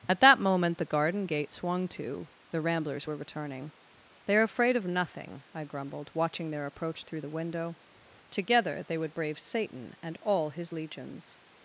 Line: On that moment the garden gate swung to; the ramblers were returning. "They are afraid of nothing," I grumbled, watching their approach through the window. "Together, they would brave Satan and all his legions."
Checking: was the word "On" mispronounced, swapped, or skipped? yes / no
yes